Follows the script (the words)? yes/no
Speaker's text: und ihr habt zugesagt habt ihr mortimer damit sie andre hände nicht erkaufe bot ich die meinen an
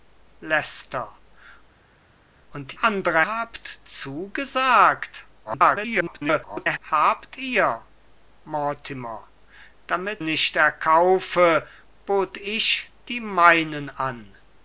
no